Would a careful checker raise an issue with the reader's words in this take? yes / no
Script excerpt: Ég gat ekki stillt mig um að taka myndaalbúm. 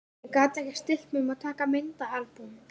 no